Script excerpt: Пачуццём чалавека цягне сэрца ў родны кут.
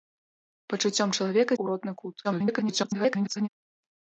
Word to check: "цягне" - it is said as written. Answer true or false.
false